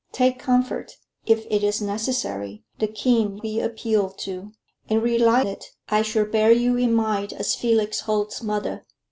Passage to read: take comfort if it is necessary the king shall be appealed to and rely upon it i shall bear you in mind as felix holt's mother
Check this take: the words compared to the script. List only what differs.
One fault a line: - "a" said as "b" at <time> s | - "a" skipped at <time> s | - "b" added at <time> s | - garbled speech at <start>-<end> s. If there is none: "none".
- "shall" skipped at 3.4 s
- "upon" skipped at 5.4 s